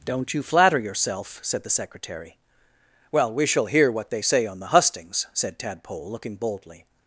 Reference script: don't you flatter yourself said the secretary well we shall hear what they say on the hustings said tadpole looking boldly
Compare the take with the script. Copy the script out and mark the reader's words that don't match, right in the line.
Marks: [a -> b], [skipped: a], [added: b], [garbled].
don't you flatter yourself said the secretary well we shall hear what they say on the hustings said tadpole looking boldly